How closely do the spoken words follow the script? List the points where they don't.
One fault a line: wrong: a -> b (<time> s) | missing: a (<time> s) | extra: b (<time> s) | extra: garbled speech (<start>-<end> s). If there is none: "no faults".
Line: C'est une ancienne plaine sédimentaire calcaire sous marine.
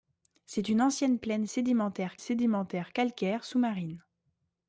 extra: sédimentaire (2.1 s)